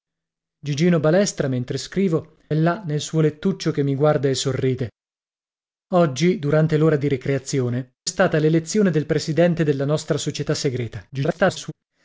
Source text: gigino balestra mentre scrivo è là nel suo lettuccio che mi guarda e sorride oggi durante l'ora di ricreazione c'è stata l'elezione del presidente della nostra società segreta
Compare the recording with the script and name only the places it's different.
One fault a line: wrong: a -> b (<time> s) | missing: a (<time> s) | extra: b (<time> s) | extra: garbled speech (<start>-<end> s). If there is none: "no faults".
missing: è (2.4 s)
missing: c'è (7.9 s)
extra: garbled speech (11.1-11.7 s)